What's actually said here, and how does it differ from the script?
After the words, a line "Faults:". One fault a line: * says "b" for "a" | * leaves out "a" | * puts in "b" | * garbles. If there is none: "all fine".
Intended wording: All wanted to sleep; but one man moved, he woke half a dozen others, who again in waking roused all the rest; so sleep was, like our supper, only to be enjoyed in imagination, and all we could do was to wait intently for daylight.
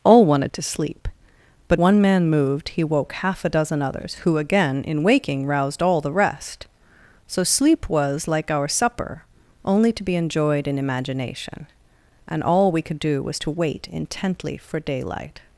All wanted to sleep; but one man moved, he woke half a dozen others, who again in waking roused all the rest; so sleep was, like our supper, only to be enjoyed in imagination, and all we could do was to wait intently for daylight.
Faults:
all fine